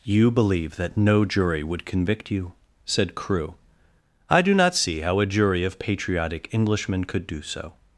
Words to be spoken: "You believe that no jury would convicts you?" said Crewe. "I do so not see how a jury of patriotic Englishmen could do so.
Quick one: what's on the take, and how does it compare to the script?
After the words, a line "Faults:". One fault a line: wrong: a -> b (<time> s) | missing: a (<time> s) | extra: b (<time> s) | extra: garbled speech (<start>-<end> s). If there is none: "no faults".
"You believe that no jury would convict you?" said Crewe. "I do not see how a jury of patriotic Englishmen could do so.
Faults:
wrong: convicts -> convict (1.9 s)
missing: so (4.5 s)